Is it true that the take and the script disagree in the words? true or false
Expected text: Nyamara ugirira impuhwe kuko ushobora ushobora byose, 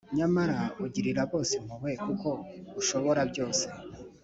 true